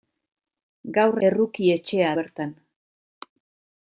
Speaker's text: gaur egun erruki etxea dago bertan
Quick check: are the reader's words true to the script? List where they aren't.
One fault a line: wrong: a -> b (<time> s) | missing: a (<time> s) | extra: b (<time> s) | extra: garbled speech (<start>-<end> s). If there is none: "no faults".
missing: egun (1.2 s)
missing: dago (2.1 s)